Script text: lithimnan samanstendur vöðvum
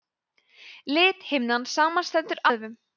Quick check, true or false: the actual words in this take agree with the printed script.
true